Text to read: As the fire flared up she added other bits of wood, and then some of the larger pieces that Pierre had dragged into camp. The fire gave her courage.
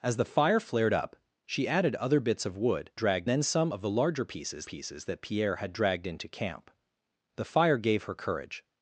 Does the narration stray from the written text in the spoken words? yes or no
yes